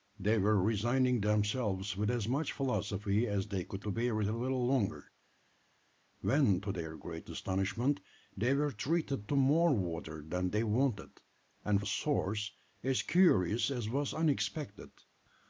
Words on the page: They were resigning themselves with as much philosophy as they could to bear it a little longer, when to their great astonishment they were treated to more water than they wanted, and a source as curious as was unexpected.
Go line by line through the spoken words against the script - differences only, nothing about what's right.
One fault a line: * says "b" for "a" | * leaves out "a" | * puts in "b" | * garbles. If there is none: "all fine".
all fine